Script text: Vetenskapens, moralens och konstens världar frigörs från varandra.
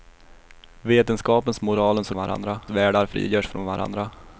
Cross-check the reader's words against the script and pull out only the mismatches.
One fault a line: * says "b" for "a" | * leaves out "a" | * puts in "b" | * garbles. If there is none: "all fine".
* says "varandra" for "konstens"